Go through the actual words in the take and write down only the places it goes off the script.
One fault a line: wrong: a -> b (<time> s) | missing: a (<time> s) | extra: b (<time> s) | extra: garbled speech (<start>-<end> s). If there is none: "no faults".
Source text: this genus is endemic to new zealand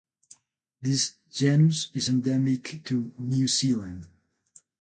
no faults